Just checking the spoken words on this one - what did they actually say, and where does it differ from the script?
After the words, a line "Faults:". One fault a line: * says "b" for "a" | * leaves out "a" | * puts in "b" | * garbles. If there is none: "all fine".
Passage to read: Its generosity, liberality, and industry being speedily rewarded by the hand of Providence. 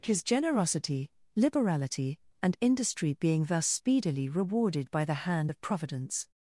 His generosity, liberality, and industry being thus speedily rewarded by the hand of Providence.
Faults:
* says "His" for "Its"
* puts in "thus"